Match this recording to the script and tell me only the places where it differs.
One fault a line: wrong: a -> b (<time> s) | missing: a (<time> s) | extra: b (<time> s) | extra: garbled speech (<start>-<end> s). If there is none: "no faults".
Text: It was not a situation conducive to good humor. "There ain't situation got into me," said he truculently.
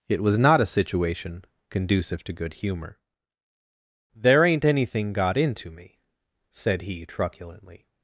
wrong: situation -> anything (4.7 s)